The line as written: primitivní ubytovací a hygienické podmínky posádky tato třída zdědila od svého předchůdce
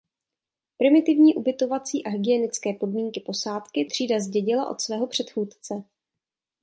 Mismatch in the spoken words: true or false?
true